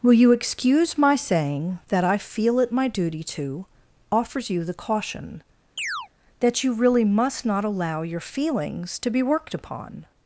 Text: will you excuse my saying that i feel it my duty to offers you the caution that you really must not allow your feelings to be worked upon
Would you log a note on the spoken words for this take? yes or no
no